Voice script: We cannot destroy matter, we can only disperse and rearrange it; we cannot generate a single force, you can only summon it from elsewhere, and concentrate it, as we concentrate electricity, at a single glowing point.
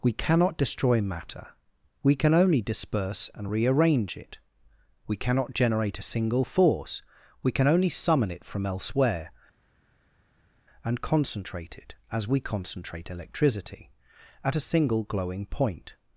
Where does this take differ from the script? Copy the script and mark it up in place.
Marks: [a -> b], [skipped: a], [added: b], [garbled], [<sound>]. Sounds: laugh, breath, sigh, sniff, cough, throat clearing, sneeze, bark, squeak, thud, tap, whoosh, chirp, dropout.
We cannot destroy matter, we can only disperse and rearrange it; we cannot generate a single force, [you -> we] can only summon it from elsewhere, and concentrate it, as we concentrate electricity, at a single glowing point.